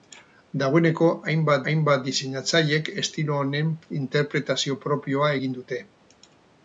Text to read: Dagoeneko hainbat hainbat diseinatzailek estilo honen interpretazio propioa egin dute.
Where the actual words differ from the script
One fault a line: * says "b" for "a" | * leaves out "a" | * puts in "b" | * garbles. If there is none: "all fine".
all fine